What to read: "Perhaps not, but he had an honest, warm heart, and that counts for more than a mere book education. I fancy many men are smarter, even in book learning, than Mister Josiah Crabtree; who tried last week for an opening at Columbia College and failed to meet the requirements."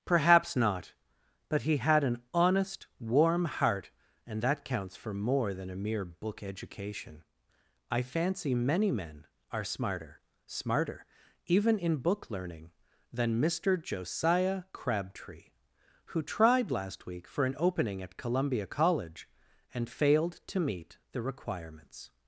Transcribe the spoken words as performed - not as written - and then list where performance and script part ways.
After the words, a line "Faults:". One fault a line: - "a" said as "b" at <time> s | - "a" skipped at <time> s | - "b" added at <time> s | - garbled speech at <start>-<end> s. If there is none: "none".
"Perhaps not, but he had an honest, warm heart, and that counts for more than a mere book education. I fancy many men are smarter smarter, even in book learning, than Mister Josiah Crabtree; who tried last week for an opening at Columbia College and failed to meet the requirements."
Faults:
- "smarter" added at 10.5 s